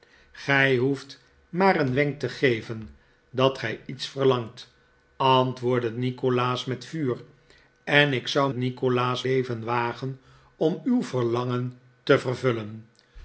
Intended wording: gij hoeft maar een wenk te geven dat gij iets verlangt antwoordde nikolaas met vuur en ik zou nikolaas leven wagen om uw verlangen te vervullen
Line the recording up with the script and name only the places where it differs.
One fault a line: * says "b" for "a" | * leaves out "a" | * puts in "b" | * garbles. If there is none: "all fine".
all fine